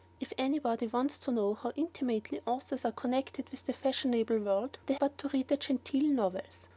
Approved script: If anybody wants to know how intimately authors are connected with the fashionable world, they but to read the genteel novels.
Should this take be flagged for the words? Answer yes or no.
no